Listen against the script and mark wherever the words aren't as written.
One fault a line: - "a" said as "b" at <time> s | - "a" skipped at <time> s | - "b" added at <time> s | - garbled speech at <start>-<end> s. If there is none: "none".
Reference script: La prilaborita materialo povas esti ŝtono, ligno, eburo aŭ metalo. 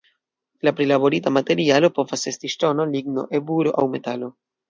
none